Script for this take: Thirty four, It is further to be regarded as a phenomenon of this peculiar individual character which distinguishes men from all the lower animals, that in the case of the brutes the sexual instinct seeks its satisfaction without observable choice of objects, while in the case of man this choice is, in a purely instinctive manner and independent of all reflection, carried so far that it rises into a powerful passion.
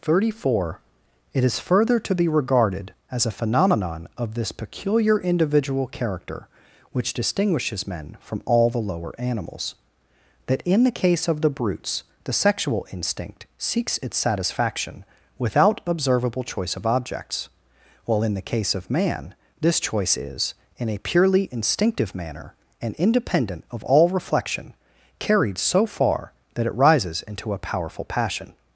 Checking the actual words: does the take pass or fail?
pass